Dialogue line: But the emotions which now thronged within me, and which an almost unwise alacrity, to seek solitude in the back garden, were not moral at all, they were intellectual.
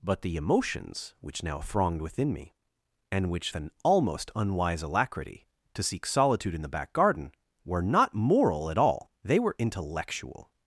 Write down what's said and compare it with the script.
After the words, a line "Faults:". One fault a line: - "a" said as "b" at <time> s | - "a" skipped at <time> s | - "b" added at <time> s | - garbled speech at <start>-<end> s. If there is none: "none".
But the emotions which now thronged within me, and which an almost unwise alacrity, to seek solitude in the back garden, were not moral at all, they were intellectual.
Faults:
none